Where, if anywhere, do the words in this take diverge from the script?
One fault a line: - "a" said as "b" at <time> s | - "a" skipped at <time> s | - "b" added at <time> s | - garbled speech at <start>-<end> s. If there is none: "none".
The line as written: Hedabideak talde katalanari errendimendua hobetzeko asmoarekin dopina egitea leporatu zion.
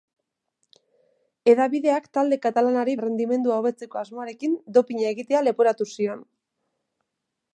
none